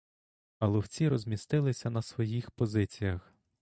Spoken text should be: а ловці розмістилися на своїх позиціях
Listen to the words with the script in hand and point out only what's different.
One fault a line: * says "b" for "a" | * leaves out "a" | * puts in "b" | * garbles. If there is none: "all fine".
all fine